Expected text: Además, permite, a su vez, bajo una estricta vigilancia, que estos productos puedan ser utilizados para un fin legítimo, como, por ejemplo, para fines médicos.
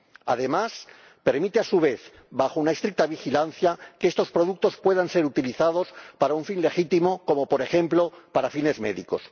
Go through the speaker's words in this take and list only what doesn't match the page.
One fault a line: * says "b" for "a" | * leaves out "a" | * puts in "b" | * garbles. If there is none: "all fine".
all fine